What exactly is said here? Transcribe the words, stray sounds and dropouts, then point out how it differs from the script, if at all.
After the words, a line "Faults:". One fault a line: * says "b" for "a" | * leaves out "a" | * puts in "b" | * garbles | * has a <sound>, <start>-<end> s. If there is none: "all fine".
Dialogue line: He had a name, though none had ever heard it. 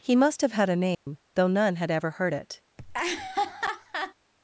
He must have had a name, though none had ever heard it.
Faults:
* puts in "must have"
* has a dropout, 0.9-1.1 s
* has a laugh, 2.8-4.1 s